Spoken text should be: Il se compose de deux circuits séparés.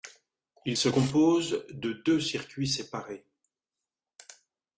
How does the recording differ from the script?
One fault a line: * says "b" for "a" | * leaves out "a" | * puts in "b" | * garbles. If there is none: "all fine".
all fine